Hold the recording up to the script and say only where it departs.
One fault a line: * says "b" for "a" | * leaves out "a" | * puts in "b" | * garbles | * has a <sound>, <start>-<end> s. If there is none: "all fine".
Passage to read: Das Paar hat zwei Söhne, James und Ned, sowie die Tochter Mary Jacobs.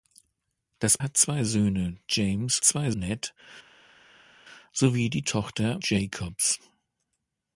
* leaves out "Paar"
* says "zwei" for "und"
* leaves out "Mary"